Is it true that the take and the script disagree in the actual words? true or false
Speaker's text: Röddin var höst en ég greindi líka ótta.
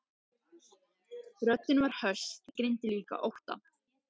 true